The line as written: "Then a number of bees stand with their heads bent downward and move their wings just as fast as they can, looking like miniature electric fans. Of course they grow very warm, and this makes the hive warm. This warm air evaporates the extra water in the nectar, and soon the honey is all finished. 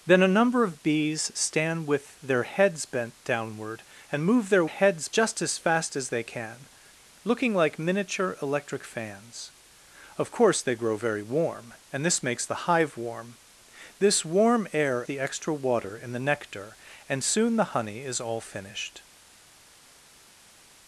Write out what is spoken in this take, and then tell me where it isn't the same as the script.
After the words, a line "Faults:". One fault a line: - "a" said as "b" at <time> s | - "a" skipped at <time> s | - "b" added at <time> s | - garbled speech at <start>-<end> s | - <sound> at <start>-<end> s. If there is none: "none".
"Then a number of bees stand with their heads bent downward and move their heads just as fast as they can, looking like miniature electric fans. Of course they grow very warm, and this makes the hive warm. This warm air the extra water in the nectar, and soon the honey is all finished.
Faults:
- "wings" said as "heads" at 4.6 s
- "evaporates" skipped at 15.0 s